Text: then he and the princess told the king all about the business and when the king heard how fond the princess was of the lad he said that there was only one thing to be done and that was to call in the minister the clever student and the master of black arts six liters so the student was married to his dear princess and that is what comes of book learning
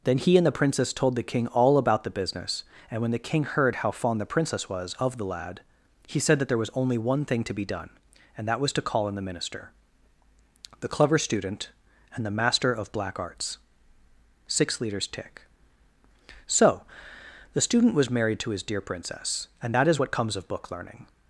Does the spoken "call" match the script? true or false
true